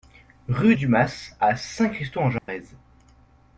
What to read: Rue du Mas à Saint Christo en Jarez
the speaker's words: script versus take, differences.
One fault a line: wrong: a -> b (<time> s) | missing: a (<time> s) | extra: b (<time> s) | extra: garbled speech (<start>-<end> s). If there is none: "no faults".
no faults